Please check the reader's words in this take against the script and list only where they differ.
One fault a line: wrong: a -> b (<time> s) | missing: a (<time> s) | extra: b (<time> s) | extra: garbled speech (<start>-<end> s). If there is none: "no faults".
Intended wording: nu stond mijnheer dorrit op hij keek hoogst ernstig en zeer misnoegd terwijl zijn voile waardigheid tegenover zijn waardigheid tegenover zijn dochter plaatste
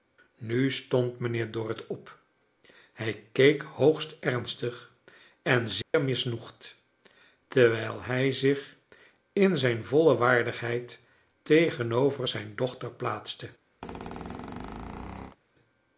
wrong: zijn voile waardigheid tegenover zijn -> hij zich in zijn voile (8.0 s)